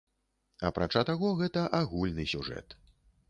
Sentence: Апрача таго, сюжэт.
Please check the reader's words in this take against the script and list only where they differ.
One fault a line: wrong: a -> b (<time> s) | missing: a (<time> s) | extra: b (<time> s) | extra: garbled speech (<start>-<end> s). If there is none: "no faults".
extra: гэта агульны (1.4 s)